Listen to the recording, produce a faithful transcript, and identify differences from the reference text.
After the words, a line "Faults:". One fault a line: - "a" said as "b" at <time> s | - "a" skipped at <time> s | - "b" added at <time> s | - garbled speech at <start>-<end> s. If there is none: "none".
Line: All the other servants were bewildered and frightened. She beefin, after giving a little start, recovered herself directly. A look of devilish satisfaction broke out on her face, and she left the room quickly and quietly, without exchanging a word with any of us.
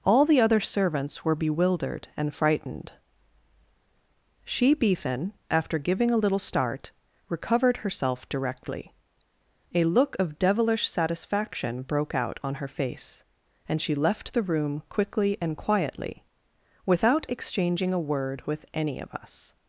All the other servants were bewildered and frightened. She beefin, after giving a little start, recovered herself directly. A look of devilish satisfaction broke out on her face, and she left the room quickly and quietly, without exchanging a word with any of us.
Faults:
none